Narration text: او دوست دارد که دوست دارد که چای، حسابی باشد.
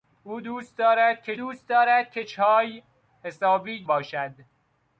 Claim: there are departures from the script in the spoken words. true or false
false